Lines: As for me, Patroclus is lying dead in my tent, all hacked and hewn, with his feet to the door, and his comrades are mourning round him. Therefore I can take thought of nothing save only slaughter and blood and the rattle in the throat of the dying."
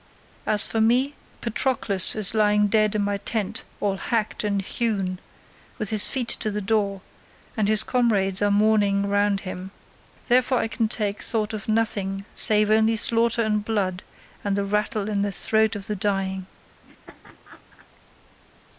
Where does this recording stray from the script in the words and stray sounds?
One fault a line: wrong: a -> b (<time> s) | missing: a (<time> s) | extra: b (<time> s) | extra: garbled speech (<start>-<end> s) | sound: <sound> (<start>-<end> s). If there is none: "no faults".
sound: laugh (16.8-17.9 s)